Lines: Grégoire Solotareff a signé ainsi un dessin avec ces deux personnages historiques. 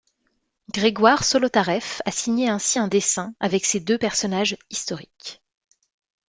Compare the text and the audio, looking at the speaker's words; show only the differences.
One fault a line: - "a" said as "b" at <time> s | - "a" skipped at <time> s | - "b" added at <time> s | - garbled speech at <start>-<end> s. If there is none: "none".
none